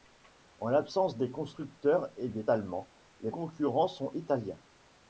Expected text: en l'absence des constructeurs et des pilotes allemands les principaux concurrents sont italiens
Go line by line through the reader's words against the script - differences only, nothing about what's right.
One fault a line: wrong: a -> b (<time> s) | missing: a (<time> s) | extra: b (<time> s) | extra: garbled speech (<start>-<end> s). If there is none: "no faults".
missing: pilotes (2.4 s)
missing: principaux (3.3 s)